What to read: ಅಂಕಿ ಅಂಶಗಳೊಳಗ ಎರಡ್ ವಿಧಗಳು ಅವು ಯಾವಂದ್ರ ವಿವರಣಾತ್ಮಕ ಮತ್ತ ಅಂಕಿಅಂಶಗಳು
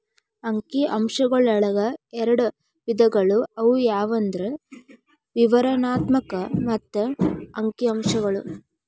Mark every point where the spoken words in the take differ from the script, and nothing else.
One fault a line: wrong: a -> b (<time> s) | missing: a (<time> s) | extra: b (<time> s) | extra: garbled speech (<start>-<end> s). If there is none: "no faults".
no faults